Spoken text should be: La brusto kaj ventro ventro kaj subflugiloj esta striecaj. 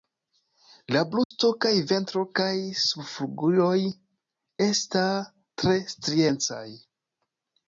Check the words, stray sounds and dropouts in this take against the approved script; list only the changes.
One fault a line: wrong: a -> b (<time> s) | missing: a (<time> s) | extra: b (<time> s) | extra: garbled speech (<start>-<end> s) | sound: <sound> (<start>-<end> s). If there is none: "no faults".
sound: dropout (1.2-1.3 s)
missing: ventro (2.2 s)
extra: tre (5.6 s)